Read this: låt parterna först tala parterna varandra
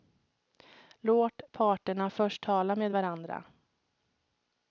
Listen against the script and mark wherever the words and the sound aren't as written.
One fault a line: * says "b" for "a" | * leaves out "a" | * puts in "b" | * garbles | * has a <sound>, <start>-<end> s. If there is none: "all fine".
* says "med" for "parterna"